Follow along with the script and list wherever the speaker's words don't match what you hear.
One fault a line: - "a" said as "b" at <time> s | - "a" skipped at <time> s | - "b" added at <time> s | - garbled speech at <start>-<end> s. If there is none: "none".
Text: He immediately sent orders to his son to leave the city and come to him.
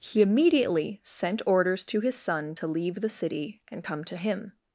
none